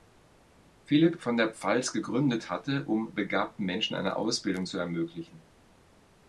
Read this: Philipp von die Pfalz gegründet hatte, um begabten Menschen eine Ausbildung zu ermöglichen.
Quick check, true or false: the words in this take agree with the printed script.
false